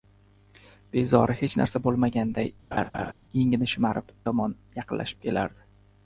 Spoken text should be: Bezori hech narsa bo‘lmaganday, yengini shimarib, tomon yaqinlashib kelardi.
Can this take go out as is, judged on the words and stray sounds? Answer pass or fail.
fail